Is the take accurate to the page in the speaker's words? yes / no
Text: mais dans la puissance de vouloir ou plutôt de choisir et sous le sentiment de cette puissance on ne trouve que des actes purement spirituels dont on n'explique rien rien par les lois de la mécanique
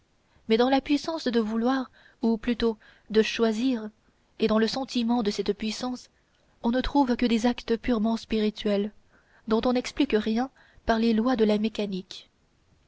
no